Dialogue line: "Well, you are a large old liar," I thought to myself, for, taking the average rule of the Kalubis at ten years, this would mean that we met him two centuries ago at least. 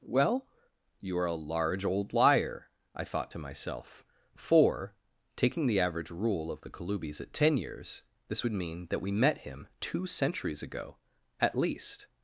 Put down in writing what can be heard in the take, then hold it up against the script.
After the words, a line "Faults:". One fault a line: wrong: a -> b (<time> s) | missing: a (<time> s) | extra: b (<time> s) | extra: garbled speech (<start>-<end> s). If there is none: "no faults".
"Well, you are a large old liar," I thought to myself, for, taking the average rule of the Kalubis at ten years, this would mean that we met him two centuries ago at least.
Faults:
no faults